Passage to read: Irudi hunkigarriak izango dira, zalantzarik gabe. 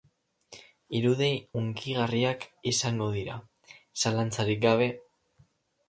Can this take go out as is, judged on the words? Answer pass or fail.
pass